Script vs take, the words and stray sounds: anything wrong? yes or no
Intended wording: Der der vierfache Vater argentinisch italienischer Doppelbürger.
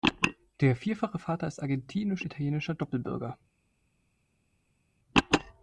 yes